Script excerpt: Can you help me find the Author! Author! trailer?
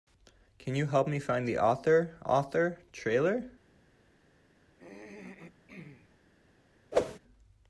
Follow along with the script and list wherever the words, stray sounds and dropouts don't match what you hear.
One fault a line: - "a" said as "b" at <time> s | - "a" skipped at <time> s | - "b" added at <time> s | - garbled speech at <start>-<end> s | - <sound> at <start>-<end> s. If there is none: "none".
- throat clearing at 4.7-6.2 s
- whoosh at 6.9-7.2 s